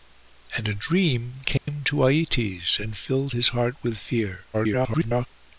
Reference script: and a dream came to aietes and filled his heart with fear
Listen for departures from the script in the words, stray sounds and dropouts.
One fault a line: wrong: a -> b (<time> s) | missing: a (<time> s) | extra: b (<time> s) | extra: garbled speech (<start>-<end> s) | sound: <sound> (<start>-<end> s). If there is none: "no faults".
sound: dropout (1.6-1.7 s)
extra: garbled speech (4.5-5.3 s)